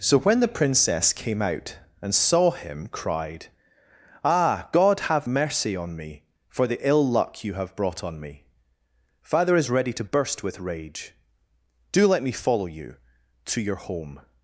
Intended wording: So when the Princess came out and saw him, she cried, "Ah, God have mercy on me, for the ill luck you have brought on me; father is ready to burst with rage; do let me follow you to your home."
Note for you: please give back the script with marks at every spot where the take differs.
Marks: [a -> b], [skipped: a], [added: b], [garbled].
So when the Princess came out and saw him, [skipped: she] cried, "Ah, God have mercy on me, for the ill luck you have brought on me; father is ready to burst with rage; do let me follow you to your home."